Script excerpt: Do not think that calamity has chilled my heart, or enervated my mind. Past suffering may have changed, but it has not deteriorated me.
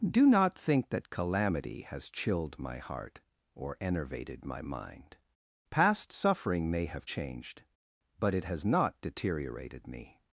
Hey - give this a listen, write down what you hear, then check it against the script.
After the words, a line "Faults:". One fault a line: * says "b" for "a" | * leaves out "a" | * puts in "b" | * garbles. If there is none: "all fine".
Do not think that calamity has chilled my heart, or enervated my mind. Past suffering may have changed, but it has not deteriorated me.
Faults:
all fine